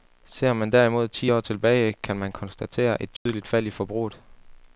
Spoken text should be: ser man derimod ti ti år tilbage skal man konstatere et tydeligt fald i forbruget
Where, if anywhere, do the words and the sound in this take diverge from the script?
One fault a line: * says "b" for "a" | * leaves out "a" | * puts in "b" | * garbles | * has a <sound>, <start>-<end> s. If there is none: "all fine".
* leaves out "ti"
* says "kan" for "skal"
* has a dropout, 3.2-3.3 s